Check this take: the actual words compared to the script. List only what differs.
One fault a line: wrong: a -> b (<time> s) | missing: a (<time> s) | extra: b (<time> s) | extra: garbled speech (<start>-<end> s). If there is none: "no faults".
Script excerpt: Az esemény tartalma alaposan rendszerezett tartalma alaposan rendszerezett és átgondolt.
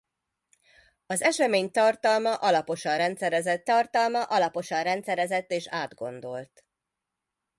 no faults